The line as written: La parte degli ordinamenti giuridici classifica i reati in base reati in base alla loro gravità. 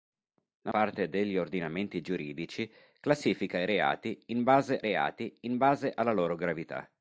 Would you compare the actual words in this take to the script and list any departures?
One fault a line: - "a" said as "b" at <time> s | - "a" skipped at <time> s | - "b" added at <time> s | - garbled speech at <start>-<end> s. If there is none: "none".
none